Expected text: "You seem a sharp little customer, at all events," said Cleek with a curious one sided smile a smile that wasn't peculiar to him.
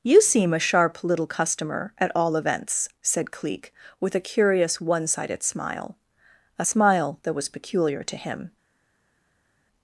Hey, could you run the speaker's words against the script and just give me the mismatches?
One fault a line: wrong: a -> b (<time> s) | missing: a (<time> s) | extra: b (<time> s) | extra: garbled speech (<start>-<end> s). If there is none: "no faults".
wrong: wasn't -> was (7.3 s)